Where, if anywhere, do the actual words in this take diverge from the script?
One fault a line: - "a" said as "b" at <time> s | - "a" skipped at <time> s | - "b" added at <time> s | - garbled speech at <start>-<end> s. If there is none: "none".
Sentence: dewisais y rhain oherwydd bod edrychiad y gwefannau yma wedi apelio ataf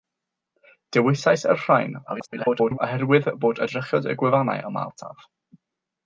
- garbled speech at 2.1-2.8 s
- "wedi apelio" skipped at 4.8 s